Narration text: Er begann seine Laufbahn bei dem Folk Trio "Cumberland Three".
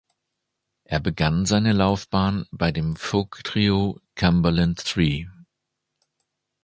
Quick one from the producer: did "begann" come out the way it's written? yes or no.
yes